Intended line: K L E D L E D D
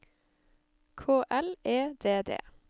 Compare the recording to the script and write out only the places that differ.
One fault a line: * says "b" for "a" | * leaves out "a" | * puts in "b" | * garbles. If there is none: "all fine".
* leaves out "L E D"